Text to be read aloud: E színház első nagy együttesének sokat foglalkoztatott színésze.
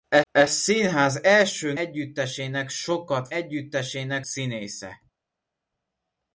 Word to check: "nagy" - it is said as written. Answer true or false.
false